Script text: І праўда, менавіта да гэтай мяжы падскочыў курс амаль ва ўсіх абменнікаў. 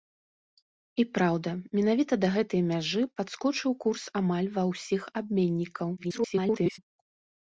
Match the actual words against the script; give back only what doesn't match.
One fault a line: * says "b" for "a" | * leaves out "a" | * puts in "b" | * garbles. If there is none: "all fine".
* garbles